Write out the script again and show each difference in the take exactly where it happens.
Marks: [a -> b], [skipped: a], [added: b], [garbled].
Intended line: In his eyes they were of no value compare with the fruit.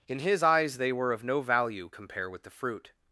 In his eyes they were of no value compare with the fruit.